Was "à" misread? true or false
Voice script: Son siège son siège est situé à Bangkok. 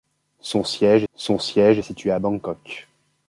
false